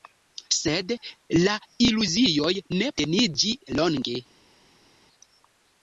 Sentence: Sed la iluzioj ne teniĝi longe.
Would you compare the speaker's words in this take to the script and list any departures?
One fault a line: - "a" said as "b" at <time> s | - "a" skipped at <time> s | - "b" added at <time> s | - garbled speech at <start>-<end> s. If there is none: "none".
none